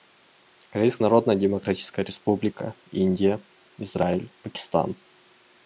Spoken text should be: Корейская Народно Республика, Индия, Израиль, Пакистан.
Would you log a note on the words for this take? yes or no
yes